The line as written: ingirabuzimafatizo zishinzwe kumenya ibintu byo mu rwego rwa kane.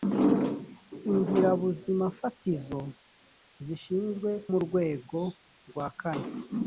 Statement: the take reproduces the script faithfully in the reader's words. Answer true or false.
false